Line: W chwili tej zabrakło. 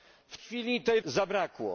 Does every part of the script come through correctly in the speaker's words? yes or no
yes